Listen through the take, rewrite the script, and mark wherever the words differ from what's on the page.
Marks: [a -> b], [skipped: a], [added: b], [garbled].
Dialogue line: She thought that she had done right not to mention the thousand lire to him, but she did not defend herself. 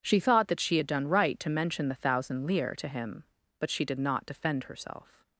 She thought that she had done right [skipped: not] to mention the thousand lire to him, but she did not defend herself.